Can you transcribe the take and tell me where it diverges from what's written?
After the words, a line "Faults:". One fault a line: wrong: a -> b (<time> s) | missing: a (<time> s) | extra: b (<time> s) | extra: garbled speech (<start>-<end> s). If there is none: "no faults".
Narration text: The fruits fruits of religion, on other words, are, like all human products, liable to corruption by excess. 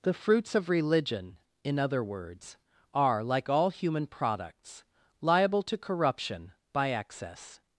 The fruits of religion, in other words, are, like all human products, liable to corruption by excess.
Faults:
missing: fruits (0.6 s)
wrong: on -> in (1.6 s)